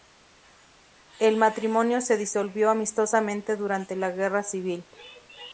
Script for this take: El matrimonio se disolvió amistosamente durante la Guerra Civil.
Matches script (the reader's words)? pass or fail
pass